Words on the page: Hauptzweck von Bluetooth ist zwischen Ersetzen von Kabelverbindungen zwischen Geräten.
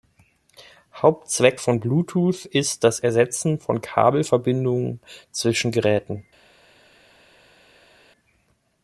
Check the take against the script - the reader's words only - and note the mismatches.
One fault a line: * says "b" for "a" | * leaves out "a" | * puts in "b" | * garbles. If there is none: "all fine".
* says "das" for "zwischen"